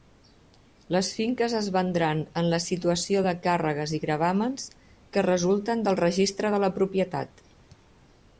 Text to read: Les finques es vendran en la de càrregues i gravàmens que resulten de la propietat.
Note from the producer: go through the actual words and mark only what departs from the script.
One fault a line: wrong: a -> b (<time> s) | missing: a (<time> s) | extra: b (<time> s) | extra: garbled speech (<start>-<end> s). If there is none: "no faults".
extra: situació (2.7 s)
extra: del registre (5.9 s)